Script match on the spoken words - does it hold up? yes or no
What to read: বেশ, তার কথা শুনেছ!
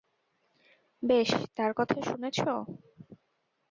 yes